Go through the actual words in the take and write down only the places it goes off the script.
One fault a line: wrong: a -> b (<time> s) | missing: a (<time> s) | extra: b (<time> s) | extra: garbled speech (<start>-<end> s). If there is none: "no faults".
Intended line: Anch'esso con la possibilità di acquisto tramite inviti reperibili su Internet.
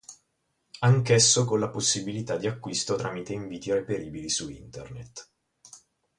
no faults